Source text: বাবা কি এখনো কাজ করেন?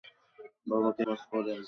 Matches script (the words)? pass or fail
fail